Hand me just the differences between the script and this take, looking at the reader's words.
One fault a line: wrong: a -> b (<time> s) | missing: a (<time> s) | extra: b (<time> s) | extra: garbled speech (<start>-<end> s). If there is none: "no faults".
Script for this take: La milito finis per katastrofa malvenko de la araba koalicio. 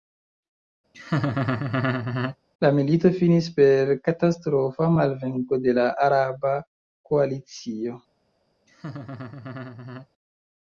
no faults